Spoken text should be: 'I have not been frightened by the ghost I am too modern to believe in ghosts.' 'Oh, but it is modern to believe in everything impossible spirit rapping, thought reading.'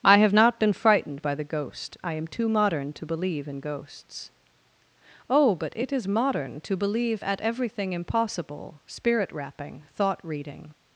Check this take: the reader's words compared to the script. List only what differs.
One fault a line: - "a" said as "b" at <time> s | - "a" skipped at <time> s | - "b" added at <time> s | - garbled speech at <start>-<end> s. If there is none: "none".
- "in" said as "at" at 7.2 s